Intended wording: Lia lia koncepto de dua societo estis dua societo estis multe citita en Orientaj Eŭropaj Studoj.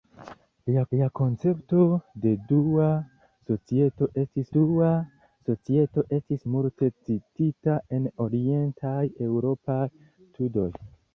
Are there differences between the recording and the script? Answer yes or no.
no